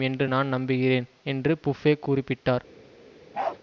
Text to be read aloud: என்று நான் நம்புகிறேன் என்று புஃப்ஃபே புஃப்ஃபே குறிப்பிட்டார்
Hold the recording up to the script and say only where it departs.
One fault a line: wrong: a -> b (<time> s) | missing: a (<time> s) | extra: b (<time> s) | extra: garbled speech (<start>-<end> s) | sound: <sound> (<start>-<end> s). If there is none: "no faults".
missing: புஃப்ஃபே (1.9 s)
sound: bark (3.3-3.6 s)